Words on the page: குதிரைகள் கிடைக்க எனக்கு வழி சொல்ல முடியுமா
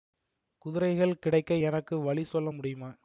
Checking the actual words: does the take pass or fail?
pass